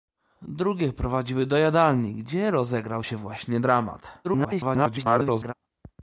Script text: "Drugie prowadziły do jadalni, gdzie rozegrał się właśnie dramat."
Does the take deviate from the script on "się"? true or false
false